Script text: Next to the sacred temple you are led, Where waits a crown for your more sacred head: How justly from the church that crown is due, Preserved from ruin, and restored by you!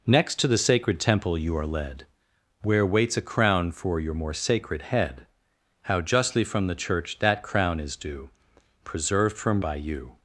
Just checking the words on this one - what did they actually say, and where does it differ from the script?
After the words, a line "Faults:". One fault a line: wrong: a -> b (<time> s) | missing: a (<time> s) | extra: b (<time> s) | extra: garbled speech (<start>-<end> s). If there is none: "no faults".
Next to the sacred temple you are led, Where waits a crown for your more sacred head: How justly from the church that crown is due, Preserved from by you!
Faults:
missing: ruin and restored (9.6 s)